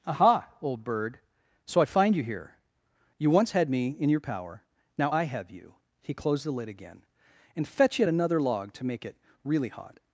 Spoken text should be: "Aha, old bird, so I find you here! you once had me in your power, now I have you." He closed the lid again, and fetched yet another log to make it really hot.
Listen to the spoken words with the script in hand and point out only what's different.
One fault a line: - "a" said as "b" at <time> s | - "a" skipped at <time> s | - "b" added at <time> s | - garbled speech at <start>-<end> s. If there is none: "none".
- "fetched" said as "fetch" at 7.7 s